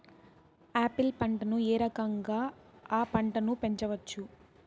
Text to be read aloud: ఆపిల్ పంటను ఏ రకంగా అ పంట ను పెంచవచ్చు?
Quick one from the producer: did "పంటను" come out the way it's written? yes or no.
yes